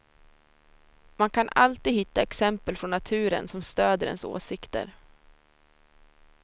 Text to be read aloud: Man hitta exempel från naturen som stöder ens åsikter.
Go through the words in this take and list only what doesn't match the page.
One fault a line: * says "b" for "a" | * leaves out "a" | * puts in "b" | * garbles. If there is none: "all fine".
* puts in "kan alltid"